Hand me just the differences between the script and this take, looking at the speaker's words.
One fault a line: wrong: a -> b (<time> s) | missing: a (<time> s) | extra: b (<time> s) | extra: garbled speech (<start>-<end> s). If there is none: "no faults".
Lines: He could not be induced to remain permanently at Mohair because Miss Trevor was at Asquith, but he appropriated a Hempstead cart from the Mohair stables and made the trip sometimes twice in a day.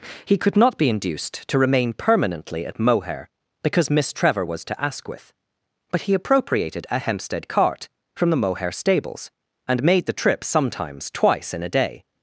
wrong: at -> to (4.6 s)